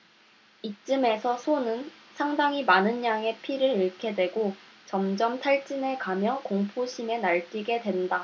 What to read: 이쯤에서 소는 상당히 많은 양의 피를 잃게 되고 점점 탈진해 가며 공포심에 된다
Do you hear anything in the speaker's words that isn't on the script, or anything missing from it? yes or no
yes